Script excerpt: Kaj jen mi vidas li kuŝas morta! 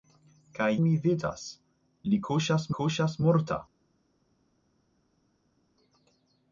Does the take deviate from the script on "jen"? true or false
true